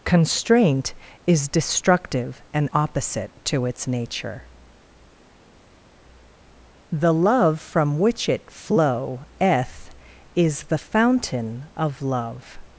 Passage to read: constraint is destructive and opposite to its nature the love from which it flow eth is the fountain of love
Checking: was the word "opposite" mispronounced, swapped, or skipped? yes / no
no